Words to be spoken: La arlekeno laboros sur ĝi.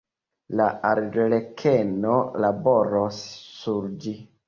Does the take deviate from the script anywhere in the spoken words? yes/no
no